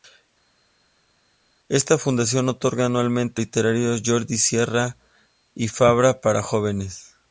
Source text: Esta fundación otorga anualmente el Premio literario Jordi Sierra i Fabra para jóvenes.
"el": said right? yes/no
no